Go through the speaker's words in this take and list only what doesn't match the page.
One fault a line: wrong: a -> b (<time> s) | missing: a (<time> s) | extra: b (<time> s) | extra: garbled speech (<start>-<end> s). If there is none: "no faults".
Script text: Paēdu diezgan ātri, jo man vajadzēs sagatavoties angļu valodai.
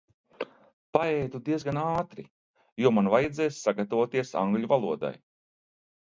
no faults